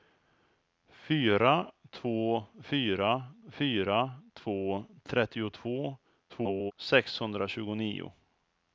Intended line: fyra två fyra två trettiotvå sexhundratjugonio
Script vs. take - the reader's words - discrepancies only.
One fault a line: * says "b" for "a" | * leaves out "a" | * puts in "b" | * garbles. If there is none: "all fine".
* puts in "fyra"
* garbles